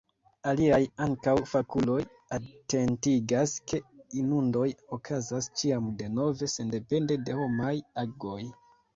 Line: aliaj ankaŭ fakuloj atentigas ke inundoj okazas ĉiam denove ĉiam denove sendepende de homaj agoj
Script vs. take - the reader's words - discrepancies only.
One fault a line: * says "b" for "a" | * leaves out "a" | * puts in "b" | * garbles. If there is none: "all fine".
* leaves out "ĉiam denove"